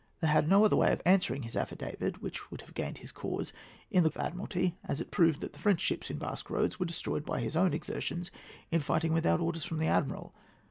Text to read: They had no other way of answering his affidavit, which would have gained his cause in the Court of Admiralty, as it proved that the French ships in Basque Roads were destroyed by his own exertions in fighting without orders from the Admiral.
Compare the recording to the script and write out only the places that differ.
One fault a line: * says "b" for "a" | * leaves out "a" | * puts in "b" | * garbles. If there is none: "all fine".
* leaves out "Court"